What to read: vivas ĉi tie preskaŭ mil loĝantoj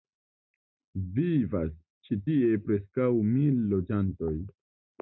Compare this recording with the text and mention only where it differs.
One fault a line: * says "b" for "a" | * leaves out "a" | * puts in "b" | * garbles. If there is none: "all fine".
all fine